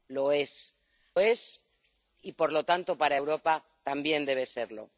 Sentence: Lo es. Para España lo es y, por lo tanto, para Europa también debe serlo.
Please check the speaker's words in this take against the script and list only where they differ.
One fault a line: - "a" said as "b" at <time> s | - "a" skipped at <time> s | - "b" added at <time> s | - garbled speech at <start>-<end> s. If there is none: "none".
- "Para España lo" skipped at 0.7 s